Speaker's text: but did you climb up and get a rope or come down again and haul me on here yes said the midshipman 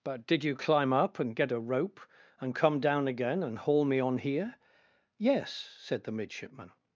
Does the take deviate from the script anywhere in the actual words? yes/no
yes